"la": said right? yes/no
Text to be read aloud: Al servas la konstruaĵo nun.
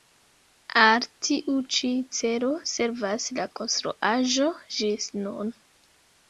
yes